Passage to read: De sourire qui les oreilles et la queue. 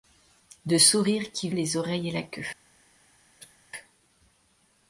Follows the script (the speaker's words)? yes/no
yes